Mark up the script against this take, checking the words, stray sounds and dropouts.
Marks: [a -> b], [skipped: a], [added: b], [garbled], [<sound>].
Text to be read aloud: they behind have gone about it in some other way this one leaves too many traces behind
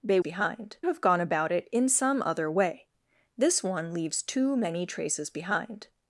they behind have gone about it in some other way this one leaves too many traces behind